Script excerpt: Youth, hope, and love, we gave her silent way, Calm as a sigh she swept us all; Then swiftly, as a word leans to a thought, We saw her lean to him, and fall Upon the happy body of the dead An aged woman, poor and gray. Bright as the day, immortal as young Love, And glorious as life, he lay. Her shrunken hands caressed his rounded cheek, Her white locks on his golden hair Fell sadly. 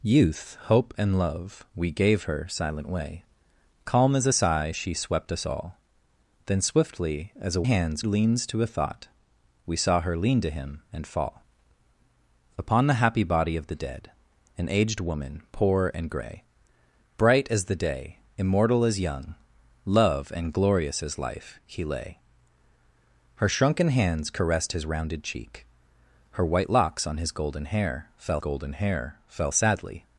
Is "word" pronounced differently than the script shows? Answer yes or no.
yes